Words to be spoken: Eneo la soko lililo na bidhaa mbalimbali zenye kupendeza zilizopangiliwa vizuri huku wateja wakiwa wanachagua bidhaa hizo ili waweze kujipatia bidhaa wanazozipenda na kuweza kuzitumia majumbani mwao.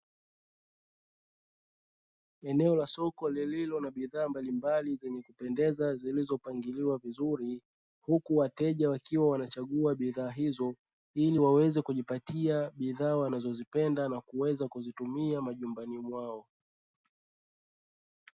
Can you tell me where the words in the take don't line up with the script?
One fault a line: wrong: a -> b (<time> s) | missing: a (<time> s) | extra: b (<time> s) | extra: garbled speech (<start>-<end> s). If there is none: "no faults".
no faults